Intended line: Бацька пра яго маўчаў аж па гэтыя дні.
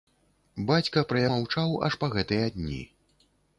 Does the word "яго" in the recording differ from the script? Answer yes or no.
yes